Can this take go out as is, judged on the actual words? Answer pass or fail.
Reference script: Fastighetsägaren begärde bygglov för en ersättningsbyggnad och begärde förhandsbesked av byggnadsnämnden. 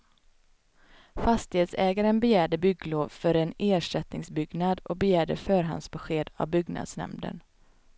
pass